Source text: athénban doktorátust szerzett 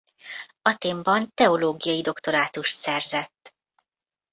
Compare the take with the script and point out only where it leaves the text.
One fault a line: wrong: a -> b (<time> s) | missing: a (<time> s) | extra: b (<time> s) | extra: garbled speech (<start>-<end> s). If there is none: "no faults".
extra: teológiai (1.3 s)